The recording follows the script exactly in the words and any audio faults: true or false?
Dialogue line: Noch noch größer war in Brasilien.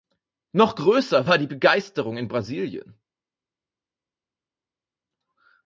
false